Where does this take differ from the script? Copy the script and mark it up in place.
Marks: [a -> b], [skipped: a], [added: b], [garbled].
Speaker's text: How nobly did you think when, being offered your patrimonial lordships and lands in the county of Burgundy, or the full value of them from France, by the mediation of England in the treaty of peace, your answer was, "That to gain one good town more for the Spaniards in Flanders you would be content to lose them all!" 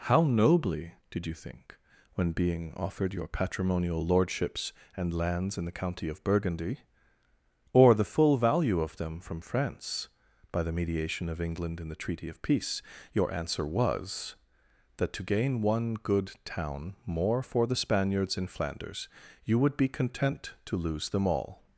How nobly did you think when, being offered your patrimonial lordships and lands in the county of Burgundy, or the full value of them from France, by the mediation of England in the treaty of peace, your answer was, "That to gain one good town more for the Spaniards in Flanders you would be content to lose them all!"